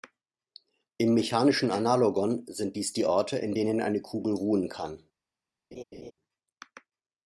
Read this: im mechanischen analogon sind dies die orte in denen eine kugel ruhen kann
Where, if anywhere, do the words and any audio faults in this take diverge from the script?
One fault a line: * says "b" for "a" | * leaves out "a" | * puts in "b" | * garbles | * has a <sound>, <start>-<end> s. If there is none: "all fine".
* has a laugh, 5.7-6.1 s